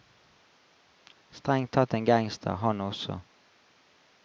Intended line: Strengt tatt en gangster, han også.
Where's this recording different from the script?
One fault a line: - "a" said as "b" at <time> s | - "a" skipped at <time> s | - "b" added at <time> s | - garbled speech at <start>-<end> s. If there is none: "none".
none